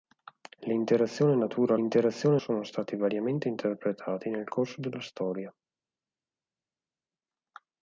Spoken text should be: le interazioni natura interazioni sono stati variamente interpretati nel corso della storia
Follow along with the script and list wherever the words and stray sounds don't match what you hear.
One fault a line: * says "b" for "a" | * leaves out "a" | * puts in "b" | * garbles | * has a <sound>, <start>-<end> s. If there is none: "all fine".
all fine